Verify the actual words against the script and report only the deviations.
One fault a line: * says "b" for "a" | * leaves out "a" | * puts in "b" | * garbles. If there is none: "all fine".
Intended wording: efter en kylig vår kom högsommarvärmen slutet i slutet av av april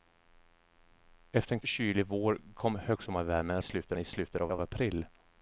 all fine